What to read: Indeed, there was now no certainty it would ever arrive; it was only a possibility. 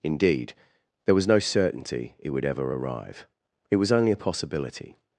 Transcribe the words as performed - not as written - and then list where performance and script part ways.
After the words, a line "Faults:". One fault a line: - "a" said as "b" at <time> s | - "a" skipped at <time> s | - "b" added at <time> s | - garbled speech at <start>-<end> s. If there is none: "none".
Indeed, there was no certainty it would ever arrive; it was only a possibility.
Faults:
- "now" skipped at 1.3 s